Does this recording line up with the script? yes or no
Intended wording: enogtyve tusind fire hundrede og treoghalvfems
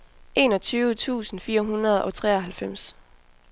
yes